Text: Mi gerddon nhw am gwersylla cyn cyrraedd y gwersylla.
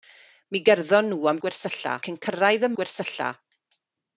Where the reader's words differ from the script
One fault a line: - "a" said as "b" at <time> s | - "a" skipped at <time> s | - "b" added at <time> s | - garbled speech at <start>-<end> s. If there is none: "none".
none